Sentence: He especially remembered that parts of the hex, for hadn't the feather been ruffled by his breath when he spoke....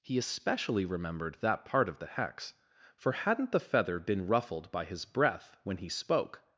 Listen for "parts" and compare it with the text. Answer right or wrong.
wrong